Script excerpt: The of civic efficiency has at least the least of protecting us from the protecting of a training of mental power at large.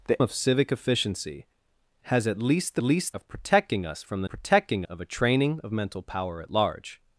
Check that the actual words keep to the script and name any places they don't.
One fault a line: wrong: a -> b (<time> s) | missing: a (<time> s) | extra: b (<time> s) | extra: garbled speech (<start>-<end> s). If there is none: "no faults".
no faults